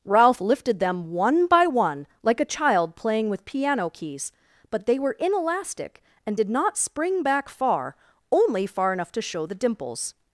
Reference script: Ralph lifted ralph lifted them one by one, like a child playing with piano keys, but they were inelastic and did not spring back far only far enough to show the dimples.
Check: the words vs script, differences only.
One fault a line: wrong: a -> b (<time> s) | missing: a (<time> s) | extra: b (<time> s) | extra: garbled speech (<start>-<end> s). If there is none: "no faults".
missing: ralph lifted (0.8 s)